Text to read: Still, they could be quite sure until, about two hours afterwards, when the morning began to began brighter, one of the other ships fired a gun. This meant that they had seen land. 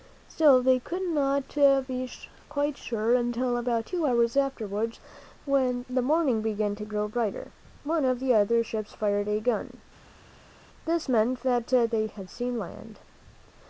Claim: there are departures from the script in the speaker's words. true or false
true